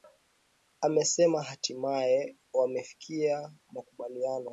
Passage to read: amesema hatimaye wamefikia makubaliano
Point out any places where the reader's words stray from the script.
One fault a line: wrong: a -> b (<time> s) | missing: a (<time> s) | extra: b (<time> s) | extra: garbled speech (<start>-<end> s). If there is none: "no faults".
no faults